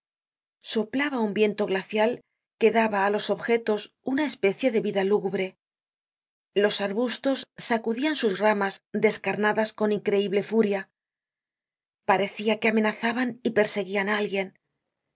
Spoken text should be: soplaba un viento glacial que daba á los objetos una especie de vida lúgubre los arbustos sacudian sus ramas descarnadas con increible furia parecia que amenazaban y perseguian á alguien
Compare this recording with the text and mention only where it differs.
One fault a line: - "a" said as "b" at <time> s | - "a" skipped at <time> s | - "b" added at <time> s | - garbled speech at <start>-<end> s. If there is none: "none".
none